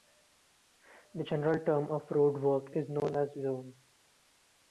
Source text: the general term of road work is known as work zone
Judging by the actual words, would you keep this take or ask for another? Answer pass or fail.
fail